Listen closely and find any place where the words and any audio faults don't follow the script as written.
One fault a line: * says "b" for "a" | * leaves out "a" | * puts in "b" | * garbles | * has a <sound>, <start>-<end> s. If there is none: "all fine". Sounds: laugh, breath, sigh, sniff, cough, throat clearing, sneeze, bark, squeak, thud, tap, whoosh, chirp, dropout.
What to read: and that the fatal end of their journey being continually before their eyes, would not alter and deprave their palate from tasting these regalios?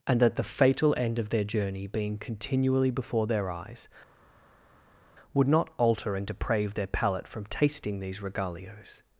all fine